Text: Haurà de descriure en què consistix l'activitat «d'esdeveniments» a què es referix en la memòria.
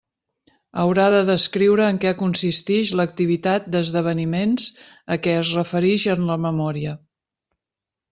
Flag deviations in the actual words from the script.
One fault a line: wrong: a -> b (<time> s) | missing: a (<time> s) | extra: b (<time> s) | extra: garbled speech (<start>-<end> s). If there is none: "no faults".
no faults